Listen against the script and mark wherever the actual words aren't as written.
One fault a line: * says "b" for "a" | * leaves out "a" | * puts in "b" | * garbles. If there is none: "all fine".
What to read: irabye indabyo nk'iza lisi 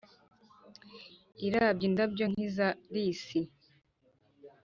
all fine